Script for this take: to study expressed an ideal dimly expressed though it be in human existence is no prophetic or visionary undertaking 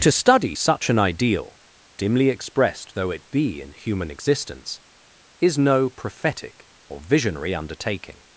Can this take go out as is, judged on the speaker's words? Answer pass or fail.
fail